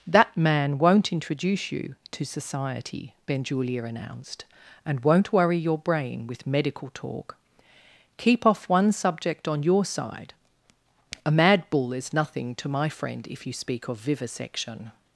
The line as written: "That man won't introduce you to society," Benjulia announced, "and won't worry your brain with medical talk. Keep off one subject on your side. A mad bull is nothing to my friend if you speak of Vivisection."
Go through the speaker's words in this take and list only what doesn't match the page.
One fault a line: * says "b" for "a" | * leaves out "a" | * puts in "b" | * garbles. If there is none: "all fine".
all fine